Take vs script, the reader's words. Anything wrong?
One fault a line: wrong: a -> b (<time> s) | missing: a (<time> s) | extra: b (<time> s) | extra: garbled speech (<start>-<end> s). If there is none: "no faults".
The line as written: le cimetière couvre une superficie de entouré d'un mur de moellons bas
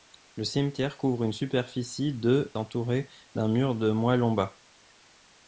no faults